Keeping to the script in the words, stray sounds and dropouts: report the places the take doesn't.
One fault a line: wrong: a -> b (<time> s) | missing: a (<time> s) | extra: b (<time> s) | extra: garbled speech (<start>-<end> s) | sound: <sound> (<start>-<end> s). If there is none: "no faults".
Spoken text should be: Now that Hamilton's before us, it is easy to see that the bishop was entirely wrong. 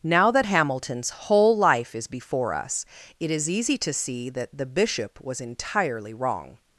extra: whole life is (1.1 s)